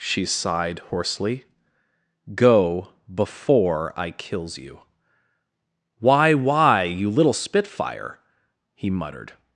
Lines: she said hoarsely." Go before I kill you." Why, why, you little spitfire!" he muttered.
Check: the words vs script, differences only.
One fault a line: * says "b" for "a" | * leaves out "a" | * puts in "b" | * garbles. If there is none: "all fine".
* says "sighed" for "said"
* says "kills" for "kill"